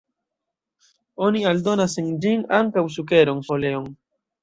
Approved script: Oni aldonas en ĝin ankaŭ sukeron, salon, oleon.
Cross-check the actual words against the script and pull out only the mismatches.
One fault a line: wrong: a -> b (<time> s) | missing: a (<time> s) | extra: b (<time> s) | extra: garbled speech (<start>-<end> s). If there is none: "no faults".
missing: salon (3.5 s)